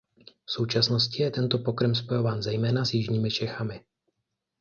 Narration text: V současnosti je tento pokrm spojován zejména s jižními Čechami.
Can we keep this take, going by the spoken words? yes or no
yes